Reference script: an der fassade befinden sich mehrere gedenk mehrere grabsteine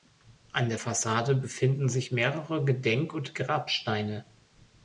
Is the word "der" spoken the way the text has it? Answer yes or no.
yes